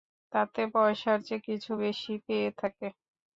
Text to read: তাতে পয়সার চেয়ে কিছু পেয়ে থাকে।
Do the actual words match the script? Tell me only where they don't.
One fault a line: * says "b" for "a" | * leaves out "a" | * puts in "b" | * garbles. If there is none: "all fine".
* puts in "বেশি"